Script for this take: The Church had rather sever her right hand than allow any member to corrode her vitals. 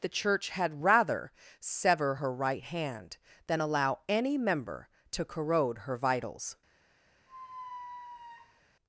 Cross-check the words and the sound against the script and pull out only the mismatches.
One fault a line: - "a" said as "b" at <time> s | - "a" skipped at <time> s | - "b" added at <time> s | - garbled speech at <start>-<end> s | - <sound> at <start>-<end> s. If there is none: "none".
- squeak at 7.3-8.6 s